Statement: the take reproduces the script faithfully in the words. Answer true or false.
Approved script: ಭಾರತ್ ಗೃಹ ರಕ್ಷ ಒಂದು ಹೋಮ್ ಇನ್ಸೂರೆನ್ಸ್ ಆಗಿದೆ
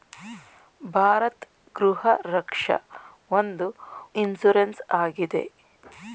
false